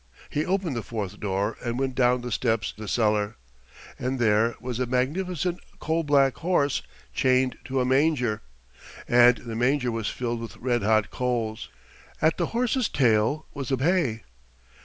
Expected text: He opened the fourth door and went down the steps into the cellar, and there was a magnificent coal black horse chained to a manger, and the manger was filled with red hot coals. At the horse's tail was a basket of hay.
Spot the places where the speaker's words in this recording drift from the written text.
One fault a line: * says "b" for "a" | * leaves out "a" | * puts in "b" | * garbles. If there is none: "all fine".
* leaves out "into"
* leaves out "basket of"